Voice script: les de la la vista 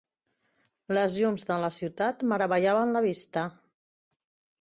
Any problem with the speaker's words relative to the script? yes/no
yes